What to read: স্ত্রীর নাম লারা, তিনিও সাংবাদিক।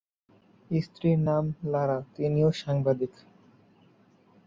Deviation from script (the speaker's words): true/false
false